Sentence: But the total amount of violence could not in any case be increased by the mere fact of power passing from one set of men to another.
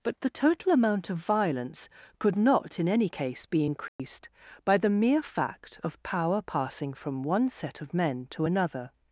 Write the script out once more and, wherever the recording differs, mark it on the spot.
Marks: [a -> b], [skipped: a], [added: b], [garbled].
But the total amount of violence could not in any case be increased by the mere fact of power passing from one set of men to another.